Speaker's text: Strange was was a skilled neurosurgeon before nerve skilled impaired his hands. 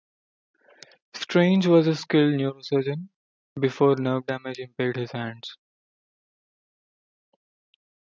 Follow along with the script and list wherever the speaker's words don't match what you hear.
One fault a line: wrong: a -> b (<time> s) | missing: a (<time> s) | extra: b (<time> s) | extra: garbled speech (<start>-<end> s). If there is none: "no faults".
missing: was (1.9 s)
wrong: skilled -> damage (4.3 s)